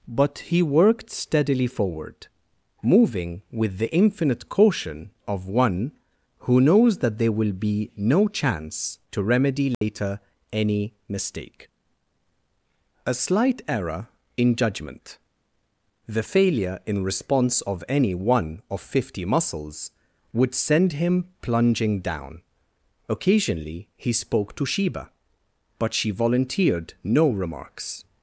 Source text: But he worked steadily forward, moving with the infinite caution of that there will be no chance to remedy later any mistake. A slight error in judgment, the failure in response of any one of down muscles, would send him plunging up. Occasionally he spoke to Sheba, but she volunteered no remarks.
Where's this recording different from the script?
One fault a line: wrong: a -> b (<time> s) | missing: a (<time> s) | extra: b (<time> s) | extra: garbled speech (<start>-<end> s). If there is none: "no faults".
extra: one who knows (5.5 s)
wrong: down -> fifty (18.8 s)
wrong: up -> down (22.0 s)